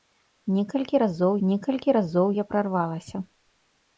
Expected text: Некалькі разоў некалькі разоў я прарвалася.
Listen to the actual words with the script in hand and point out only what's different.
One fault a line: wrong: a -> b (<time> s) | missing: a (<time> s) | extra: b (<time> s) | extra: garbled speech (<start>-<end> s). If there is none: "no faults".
no faults